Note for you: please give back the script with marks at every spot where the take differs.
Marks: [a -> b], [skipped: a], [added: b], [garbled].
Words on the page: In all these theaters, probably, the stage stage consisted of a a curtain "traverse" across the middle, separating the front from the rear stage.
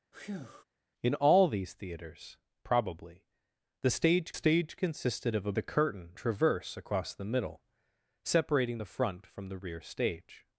In all these theaters, probably, the stage stage consisted of a a curtain "traverse" across the middle, separating the front from the rear stage.